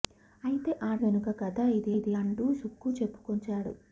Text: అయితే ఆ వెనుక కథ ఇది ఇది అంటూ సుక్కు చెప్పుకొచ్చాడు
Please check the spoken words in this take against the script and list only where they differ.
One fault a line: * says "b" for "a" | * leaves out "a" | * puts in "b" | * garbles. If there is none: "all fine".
all fine